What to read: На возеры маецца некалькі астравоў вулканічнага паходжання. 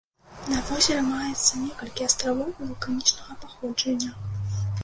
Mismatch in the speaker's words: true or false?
false